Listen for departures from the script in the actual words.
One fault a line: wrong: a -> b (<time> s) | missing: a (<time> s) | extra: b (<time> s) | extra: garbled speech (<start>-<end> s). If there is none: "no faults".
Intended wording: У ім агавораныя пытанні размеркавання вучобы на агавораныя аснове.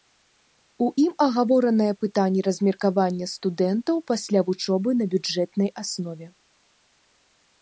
extra: студэнтаў пасля (3.3 s)
wrong: агавораныя -> бюджэтнай (5.2 s)